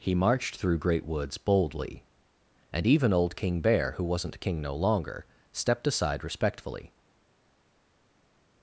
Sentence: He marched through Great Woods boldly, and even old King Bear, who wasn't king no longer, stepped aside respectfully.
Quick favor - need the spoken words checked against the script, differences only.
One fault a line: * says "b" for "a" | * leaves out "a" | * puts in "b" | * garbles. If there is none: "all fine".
all fine